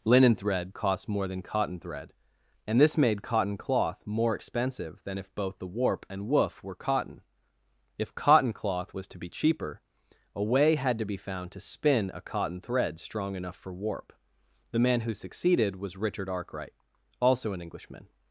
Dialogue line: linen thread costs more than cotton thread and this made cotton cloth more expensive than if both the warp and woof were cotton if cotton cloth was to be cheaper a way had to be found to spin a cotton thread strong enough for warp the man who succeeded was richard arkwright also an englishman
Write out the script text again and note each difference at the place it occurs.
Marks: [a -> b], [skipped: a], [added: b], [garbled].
linen thread [costs -> cost] more than cotton thread and this made cotton cloth more expensive than if both the warp and woof were cotton if cotton cloth was to be cheaper a way had to be found to spin a cotton thread strong enough for warp the man who succeeded was richard arkwright also an englishman